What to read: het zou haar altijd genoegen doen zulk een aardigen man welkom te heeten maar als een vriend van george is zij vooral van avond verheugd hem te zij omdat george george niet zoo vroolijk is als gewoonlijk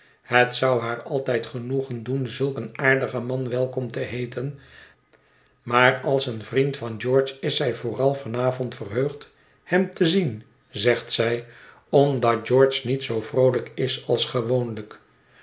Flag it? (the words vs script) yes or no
yes